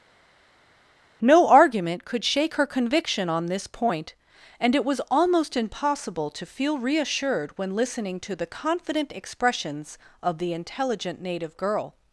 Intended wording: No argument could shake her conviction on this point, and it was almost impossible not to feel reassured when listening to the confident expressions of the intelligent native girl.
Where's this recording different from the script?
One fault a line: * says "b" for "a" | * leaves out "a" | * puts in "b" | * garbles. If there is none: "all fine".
* leaves out "not"